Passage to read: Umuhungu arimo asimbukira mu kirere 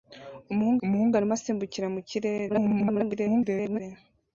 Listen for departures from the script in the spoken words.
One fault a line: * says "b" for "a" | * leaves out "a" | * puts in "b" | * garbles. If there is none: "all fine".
* puts in "umuhungu"
* garbles